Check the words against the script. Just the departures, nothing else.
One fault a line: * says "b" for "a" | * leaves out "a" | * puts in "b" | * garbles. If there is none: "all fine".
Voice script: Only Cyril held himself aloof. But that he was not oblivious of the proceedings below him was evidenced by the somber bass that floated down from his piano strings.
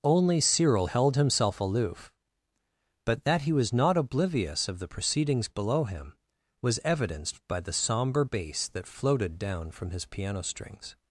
all fine